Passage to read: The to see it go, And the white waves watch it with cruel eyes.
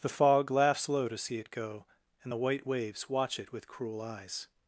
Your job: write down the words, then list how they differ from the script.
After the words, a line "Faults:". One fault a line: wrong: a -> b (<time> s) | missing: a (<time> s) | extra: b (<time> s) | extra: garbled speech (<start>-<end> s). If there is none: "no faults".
The fog laughs low to see it go, And the white waves watch it with cruel eyes.
Faults:
extra: fog laughs low (0.1 s)